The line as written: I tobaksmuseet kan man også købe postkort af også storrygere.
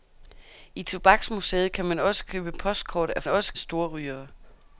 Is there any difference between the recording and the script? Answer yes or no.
no